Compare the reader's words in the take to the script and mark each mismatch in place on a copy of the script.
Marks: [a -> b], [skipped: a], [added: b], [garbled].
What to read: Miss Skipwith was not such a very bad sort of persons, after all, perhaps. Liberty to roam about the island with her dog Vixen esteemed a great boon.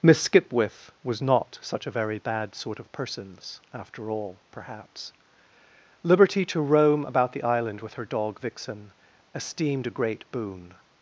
Miss Skipwith was not such a very bad sort of persons, after all, perhaps. Liberty to roam about the island with her dog Vixen esteemed a great boon.